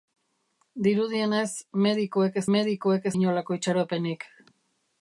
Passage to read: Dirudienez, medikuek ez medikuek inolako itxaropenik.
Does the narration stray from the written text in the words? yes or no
no